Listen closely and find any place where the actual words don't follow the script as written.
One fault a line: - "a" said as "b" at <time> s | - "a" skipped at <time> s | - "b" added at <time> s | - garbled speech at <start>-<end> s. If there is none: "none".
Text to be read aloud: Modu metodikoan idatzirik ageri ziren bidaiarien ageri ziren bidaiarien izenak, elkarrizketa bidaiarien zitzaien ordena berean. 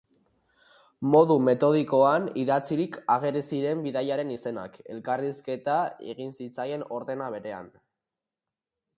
- "ageri ziren bidaiarien" skipped at 4.3 s
- "bidaiarien" said as "egin" at 6.1 s